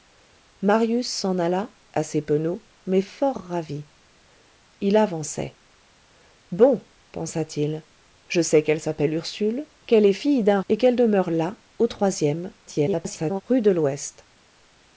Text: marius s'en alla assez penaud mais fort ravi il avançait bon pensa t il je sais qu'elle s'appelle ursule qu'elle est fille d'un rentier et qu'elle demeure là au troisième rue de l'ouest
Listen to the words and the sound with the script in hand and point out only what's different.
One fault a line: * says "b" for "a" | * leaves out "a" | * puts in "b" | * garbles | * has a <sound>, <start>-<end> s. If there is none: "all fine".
* leaves out "rentier"
* garbles